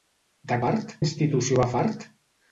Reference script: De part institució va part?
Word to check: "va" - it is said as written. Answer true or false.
true